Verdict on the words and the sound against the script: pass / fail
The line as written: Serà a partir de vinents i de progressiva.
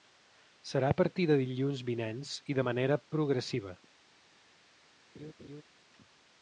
fail